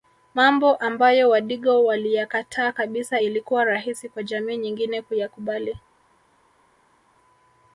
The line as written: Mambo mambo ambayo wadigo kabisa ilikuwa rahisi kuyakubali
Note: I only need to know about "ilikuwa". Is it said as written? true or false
true